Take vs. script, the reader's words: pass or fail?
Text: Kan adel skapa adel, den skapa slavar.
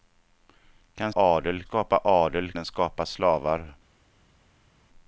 pass